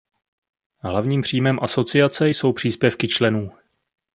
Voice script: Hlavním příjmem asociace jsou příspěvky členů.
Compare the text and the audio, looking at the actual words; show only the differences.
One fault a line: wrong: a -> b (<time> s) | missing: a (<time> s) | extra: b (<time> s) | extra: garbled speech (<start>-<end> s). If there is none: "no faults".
no faults